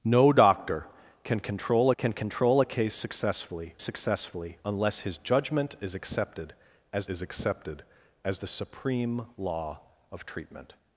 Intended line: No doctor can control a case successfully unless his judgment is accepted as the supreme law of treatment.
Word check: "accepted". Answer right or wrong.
right